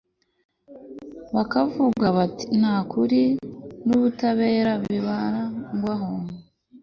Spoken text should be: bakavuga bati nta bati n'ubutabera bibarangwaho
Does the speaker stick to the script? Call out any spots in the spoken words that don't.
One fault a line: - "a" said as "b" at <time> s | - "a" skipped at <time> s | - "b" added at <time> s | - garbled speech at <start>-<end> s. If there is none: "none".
- "bati" said as "kuri" at 2.9 s